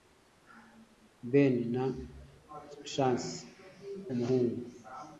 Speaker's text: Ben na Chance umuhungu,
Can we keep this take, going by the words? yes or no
yes